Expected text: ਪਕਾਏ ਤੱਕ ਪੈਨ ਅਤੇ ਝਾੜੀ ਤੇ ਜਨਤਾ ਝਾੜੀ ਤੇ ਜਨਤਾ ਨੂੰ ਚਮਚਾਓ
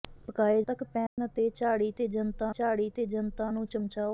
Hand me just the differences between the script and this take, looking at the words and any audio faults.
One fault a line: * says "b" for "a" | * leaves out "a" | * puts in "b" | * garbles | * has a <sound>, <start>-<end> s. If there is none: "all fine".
* has a dropout, 1.1-1.2 s